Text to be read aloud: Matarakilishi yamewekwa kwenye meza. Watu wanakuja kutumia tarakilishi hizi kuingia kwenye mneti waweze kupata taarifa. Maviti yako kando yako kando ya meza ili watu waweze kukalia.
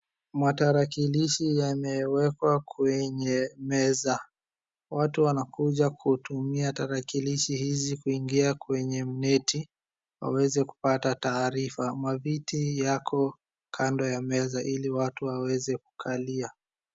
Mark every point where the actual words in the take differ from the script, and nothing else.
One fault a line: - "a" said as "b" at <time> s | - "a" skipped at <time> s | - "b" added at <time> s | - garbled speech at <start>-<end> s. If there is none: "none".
- "yako kando" skipped at 14.1 s